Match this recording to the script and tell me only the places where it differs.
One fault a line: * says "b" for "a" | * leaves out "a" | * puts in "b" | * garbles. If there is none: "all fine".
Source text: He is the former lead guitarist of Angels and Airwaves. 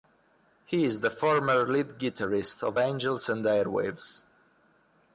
all fine